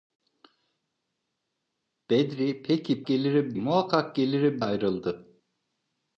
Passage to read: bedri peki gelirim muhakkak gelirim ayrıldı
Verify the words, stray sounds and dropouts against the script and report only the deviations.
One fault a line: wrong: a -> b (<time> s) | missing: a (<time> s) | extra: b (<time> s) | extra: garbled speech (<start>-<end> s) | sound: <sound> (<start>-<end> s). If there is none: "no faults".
no faults